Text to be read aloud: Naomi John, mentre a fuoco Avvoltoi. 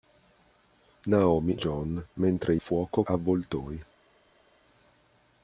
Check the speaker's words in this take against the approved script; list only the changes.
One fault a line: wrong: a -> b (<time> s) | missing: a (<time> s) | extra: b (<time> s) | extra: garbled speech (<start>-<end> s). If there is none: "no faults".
no faults